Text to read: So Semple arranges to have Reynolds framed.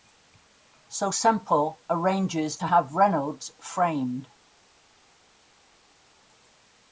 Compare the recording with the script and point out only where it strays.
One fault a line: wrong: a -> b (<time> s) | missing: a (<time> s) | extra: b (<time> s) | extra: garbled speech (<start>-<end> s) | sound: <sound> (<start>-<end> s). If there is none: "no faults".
no faults